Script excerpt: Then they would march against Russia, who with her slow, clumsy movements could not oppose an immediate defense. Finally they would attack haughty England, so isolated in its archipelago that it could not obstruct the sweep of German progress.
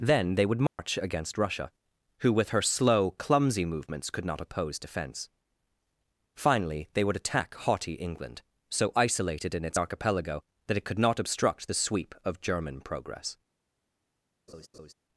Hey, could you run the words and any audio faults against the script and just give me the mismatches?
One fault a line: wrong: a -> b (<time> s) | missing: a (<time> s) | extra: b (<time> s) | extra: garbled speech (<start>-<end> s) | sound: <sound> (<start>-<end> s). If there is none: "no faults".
sound: dropout (0.7-0.8 s)
missing: an immediate (4.8 s)
sound: laugh (14.5-14.9 s)